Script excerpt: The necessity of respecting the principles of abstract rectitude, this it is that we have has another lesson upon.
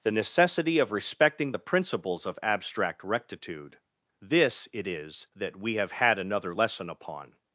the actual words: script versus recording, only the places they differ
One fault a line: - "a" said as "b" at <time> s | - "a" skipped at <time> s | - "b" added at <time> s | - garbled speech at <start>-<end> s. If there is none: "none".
- "has" said as "had" at 5.9 s